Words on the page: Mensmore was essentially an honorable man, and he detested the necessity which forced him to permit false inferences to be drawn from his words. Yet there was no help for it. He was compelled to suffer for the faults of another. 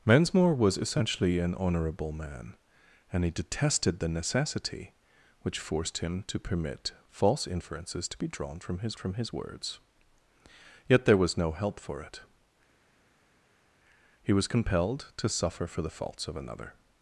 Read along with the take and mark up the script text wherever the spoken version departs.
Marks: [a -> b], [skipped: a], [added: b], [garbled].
Mensmore was essentially an honorable man, and he detested the necessity which forced him to permit false inferences to be drawn from his [added: from his] words. Yet there was no help for it. He was compelled to suffer for the faults of another.